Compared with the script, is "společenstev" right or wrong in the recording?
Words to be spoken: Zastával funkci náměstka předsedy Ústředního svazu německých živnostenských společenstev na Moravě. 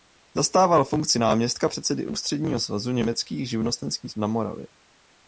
wrong